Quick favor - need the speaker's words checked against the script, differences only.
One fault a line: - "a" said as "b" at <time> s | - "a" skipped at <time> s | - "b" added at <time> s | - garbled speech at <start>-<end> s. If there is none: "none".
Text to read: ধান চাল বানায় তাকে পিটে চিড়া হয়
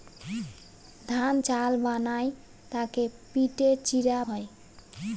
none